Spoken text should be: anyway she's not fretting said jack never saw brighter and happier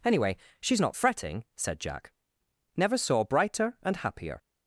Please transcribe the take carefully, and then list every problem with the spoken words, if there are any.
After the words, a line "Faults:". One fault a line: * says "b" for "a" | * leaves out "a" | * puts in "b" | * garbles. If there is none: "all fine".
anyway she's not fretting said jack never saw brighter and happier
Faults:
all fine